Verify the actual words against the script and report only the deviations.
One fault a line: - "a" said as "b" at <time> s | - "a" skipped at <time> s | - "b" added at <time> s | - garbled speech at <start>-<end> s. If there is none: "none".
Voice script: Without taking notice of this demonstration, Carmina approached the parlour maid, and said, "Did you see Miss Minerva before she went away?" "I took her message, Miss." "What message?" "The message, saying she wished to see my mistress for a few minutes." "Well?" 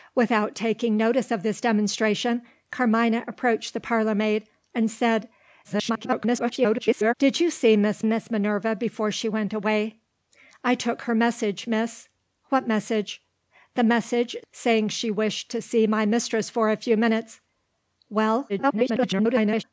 - garbled speech at 5.6-7.1 s
- "Miss" added at 8.0 s
- garbled speech at 18.5-19.6 s